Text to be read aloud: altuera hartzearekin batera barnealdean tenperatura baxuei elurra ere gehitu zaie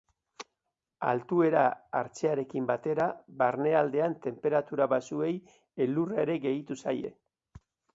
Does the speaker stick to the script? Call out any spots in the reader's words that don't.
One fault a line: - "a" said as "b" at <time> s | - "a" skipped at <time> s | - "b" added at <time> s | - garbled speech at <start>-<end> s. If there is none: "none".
none